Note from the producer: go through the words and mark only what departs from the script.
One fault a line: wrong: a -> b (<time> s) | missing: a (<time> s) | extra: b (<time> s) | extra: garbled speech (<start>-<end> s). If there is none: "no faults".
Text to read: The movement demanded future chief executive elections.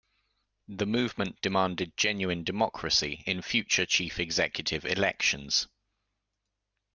extra: genuine democracy in (2.0 s)